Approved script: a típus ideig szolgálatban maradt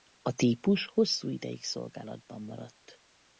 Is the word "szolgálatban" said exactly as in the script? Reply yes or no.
yes